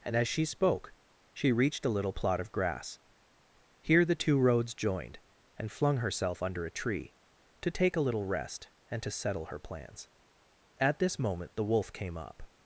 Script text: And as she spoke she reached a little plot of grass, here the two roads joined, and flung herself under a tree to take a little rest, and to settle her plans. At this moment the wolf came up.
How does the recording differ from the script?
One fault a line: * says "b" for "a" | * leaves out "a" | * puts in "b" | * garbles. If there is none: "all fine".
all fine